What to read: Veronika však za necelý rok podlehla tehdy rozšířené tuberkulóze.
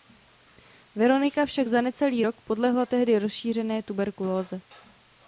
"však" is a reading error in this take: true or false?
false